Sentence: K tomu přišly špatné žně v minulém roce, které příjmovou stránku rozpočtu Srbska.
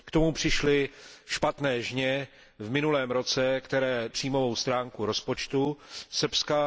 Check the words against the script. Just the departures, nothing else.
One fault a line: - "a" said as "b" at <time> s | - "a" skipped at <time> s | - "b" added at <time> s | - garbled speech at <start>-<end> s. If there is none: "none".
none